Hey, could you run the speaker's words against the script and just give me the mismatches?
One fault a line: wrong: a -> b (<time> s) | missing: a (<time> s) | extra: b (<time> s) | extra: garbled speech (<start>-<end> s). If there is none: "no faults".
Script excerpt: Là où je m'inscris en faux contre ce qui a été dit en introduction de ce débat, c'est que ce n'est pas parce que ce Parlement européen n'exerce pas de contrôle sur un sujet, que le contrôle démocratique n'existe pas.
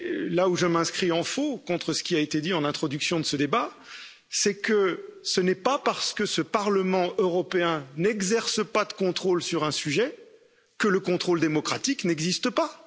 no faults